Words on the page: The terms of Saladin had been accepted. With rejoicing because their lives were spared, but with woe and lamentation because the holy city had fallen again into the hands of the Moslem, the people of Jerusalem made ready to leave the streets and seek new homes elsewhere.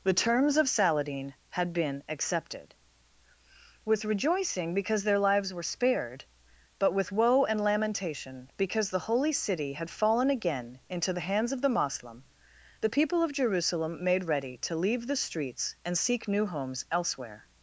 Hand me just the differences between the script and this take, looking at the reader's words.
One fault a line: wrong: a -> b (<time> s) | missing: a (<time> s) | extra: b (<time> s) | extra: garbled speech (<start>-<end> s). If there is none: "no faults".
no faults